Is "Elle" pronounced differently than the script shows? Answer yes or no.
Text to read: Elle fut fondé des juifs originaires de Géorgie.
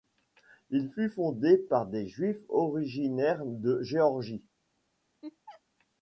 yes